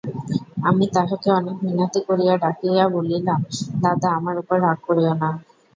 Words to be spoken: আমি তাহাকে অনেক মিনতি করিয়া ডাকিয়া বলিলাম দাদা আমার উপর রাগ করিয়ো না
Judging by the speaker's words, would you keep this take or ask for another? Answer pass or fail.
pass